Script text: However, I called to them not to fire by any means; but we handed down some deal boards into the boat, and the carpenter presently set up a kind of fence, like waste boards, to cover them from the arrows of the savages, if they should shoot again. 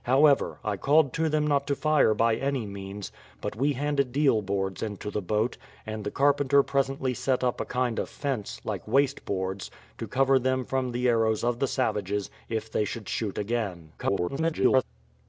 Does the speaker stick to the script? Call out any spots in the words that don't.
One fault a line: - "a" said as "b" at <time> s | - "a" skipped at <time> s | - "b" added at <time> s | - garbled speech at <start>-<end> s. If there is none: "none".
- "down some" skipped at 4.2 s
- garbled speech at 14.0-14.8 s